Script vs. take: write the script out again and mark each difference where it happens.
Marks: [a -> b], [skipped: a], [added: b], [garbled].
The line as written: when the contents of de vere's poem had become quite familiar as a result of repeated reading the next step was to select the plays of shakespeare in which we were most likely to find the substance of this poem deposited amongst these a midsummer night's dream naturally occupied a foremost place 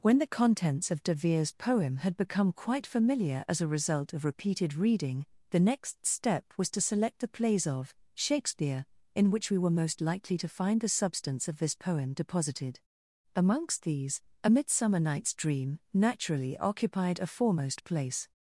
when the contents of de vere's poem had become quite familiar as a result of repeated reading the next step was to select the plays of shakespeare in which we were most likely to find the substance of this poem deposited amongst these a midsummer night's dream naturally occupied a foremost place